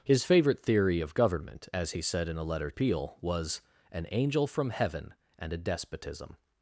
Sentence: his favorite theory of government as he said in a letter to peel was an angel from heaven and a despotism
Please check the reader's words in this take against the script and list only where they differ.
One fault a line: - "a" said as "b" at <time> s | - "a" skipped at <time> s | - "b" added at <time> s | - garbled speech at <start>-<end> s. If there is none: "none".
- "to" skipped at 2.7 s